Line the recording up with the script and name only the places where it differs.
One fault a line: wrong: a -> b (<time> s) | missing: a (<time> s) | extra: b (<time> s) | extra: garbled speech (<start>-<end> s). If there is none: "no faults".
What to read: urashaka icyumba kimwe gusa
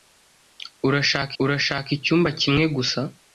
extra: urashaka (1.4 s)